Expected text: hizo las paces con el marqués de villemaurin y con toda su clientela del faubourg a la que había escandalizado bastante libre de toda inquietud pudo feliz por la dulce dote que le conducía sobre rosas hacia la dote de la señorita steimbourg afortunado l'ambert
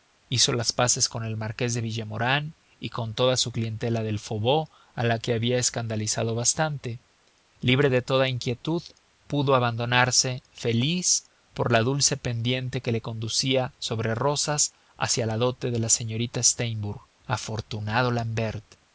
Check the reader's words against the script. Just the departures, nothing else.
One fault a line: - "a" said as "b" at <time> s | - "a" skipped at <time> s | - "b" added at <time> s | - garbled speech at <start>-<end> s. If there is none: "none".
- "abandonarse" added at 9.6 s
- "dote" said as "pendiente" at 12.2 s